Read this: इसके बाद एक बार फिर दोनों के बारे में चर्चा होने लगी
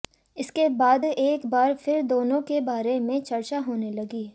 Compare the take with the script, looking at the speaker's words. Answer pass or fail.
pass